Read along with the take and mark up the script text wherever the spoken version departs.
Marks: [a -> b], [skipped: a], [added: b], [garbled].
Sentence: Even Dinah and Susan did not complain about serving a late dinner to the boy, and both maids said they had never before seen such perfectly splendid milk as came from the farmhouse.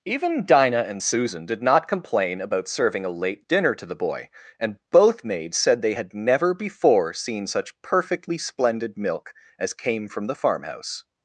Even Dinah and Susan did not complain about serving a late dinner to the boy, and both maids said they had never before seen such perfectly splendid milk as came from the farmhouse.